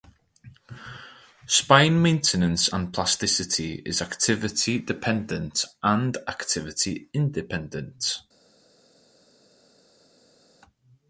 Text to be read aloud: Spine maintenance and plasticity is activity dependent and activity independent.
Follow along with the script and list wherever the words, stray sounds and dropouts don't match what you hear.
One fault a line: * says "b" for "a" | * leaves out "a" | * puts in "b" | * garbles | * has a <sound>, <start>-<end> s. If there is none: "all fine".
all fine